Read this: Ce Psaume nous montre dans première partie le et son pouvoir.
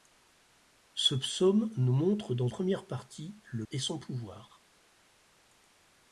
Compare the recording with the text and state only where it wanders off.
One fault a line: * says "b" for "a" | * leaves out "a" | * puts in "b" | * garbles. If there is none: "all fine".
all fine